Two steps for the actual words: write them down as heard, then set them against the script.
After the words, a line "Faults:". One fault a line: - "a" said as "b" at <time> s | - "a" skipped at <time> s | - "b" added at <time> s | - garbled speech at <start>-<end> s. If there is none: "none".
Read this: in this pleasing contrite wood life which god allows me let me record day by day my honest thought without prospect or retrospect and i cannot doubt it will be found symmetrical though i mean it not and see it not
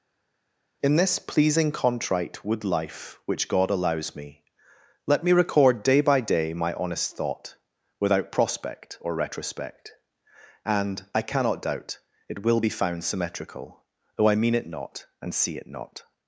in this pleasing contrite wood life which god allows me let me record day by day my honest thought without prospect or retrospect and i cannot doubt it will be found symmetrical though i mean it not and see it not
Faults:
none